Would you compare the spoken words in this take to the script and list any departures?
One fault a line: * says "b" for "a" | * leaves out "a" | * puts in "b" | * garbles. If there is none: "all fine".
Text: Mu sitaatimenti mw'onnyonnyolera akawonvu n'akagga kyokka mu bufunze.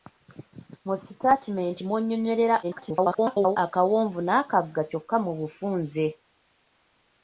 * garbles